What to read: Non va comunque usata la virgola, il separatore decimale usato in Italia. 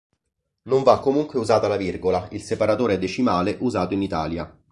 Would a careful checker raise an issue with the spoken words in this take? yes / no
no